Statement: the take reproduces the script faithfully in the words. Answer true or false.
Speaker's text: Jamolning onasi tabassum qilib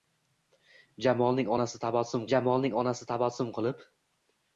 false